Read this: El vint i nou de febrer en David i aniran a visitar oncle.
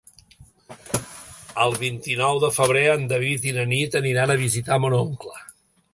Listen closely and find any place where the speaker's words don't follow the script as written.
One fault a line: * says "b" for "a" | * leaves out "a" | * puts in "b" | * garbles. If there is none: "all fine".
* puts in "na Nit"
* puts in "mon"